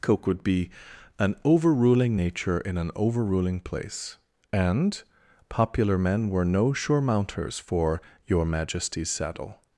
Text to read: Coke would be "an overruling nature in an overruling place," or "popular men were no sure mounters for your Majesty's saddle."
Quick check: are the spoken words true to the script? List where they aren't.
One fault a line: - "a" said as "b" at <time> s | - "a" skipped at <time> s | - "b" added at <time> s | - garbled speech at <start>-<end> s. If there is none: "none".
- "or" said as "and" at 4.5 s